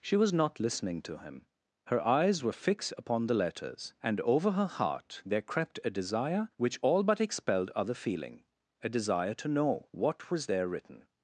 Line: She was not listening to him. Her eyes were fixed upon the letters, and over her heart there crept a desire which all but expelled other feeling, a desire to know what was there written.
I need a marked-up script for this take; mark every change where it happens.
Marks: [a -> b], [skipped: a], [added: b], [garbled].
She was not listening to him. Her eyes were fixed upon the letters, and over her heart there crept a desire which all but expelled other feeling, a desire to know what was there written.